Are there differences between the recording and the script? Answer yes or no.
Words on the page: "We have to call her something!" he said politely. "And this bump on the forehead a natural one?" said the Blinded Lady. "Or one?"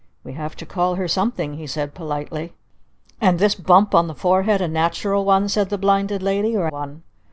no